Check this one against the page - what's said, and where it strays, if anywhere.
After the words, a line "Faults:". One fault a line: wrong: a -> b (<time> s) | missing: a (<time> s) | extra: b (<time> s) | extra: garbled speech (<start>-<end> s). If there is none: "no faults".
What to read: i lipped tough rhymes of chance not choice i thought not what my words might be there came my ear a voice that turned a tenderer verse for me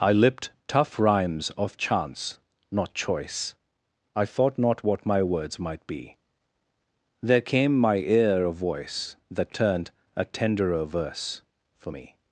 i lipped tough rhymes of chance not choice i thought not what my words might be there came my ear a voice that turned a tenderer verse for me
Faults:
no faults